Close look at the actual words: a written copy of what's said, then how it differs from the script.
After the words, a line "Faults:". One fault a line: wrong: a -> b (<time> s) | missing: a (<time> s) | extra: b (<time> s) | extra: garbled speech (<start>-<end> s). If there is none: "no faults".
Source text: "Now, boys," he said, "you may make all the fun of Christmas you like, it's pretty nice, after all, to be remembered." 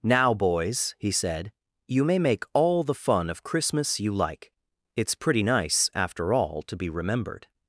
"Now, boys," he said, "you may make all the fun of Christmas you like, it's pretty nice, after all, to be remembered."
Faults:
no faults